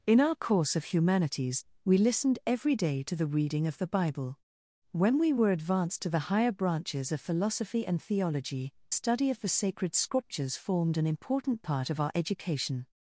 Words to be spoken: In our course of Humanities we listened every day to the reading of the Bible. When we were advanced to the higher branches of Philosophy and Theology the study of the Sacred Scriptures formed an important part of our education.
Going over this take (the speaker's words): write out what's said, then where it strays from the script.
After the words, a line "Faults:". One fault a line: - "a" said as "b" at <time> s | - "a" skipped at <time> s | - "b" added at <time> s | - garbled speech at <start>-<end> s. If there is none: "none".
In our course of Humanities we listened every day to the reading of the Bible. When we were advanced to the higher branches of Philosophy and Theology study of the Sacred Scriptures formed an important part of our education.
Faults:
- "the" skipped at 8.7 s